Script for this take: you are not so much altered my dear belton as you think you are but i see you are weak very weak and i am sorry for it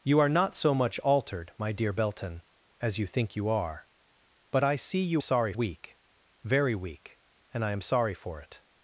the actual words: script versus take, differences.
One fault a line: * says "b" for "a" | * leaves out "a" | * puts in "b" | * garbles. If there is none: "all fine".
* says "sorry" for "are"